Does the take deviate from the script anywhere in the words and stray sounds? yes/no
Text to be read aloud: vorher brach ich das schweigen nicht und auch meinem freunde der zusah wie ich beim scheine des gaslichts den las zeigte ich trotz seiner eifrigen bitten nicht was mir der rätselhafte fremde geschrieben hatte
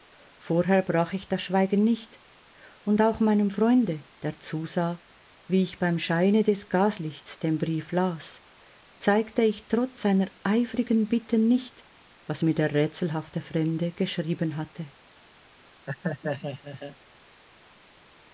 yes